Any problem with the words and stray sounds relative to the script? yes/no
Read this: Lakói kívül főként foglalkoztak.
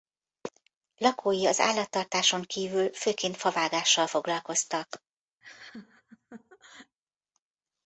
yes